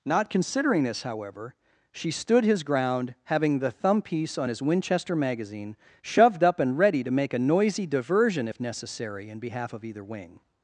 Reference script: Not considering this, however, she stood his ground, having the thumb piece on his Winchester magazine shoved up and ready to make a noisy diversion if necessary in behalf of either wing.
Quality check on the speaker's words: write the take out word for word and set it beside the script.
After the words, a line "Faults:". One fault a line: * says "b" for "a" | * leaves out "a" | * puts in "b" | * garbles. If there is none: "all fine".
Not considering this, however, she stood his ground, having the thumb piece on his Winchester magazine shoved up and ready to make a noisy diversion if necessary in behalf of either wing.
Faults:
all fine